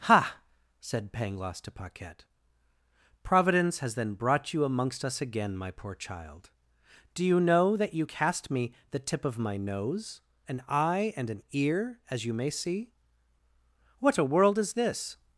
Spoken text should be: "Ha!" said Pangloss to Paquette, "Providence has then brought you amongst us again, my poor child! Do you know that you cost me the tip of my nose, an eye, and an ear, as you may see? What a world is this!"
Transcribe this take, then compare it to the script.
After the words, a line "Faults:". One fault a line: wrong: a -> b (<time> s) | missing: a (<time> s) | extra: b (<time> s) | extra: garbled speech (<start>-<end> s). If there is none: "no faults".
"Ha!" said Pangloss to Paquette, "Providence has then brought you amongst us again, my poor child! Do you know that you cast me the tip of my nose, an eye, and an ear, as you may see? What a world is this!"
Faults:
wrong: cost -> cast (8.0 s)